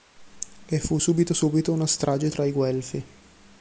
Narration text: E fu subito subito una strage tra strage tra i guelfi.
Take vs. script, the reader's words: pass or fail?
fail